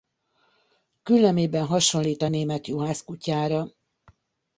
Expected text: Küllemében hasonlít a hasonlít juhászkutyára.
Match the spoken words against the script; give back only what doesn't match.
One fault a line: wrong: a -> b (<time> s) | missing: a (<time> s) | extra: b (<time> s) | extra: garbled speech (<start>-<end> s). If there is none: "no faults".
wrong: hasonlít -> német (2.3 s)